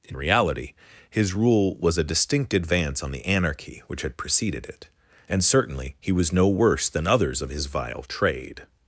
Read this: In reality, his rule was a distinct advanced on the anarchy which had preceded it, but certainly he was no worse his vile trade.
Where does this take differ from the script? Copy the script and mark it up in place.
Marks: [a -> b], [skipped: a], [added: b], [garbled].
In reality, his rule was a distinct [advanced -> advance] on the anarchy which had preceded it, [but -> and] certainly he was no worse [added: than others of] his vile trade.